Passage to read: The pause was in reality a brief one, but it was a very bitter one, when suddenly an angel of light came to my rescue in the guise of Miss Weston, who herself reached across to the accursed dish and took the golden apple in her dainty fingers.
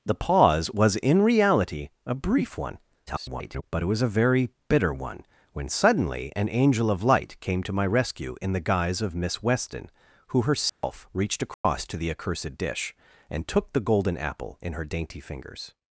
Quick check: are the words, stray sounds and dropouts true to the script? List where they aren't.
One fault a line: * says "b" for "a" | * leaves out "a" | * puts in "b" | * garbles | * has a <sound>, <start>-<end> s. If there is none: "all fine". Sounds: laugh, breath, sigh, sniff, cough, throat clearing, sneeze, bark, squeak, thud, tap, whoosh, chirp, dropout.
* garbles
* has a dropout, 10.7-10.8 s
* has a dropout, 11.5-11.6 s